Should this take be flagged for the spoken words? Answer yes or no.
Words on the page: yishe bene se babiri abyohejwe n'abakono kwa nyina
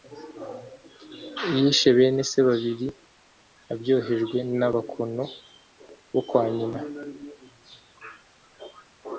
yes